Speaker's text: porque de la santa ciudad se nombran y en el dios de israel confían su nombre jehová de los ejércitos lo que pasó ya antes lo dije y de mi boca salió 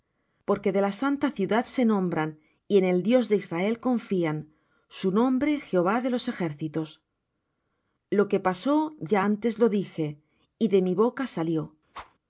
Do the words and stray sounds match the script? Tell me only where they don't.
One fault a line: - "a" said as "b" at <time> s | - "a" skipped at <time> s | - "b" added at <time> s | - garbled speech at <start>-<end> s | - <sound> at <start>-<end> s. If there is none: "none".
- whoosh at 11.9-12.2 s